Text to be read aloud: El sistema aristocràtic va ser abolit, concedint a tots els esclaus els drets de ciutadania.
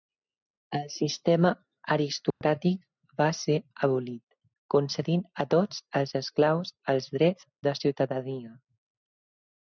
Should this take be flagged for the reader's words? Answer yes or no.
no